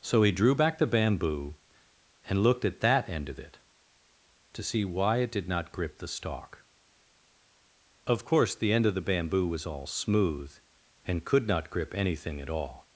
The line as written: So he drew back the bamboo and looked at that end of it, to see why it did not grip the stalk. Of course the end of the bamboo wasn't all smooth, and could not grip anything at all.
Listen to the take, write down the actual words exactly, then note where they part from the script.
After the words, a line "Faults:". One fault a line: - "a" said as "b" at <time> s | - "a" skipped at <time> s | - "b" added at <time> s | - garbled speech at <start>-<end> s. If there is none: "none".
So he drew back the bamboo and looked at that end of it, to see why it did not grip the stalk. Of course the end of the bamboo was all smooth, and could not grip anything at all.
Faults:
- "wasn't" said as "was" at 9.5 s